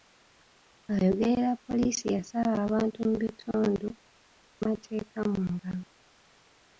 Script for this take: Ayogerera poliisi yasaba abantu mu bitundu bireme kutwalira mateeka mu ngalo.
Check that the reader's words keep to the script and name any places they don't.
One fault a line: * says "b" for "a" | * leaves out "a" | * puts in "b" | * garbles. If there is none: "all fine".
* leaves out "bireme kutwalira"